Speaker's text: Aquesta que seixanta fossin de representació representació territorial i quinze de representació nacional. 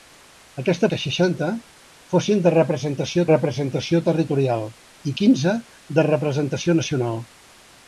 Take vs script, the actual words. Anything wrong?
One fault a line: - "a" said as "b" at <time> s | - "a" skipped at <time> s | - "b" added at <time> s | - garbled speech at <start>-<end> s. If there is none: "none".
none